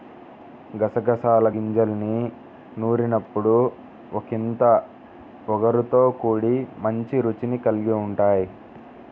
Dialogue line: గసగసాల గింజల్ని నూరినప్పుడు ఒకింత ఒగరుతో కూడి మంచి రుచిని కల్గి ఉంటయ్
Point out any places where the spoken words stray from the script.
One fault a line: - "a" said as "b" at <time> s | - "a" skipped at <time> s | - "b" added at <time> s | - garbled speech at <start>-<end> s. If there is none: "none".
none